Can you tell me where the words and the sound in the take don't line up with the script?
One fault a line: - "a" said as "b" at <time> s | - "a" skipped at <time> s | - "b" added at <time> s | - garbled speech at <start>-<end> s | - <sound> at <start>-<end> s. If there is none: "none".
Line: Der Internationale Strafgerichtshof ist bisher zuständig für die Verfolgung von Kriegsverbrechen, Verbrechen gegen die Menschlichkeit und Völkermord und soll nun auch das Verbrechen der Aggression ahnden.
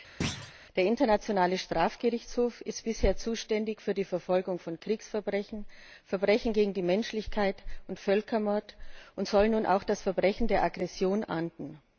- thud at 0.2-0.5 s